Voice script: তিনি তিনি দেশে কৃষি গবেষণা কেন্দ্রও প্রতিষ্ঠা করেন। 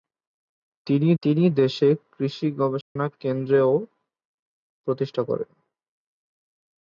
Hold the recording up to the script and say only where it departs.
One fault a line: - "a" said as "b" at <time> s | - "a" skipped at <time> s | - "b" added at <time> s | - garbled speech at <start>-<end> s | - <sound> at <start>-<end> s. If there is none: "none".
- dropout at 2.8-3.0 s